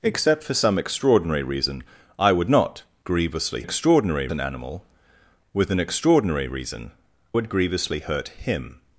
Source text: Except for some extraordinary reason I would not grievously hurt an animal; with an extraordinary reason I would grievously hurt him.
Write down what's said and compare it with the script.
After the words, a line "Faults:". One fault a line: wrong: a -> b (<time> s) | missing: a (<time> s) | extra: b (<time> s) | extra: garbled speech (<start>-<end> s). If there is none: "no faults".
Except for some extraordinary reason I would not grievously extraordinary an animal; with an extraordinary reason would grievously hurt him.
Faults:
wrong: hurt -> extraordinary (3.6 s)
missing: I (6.9 s)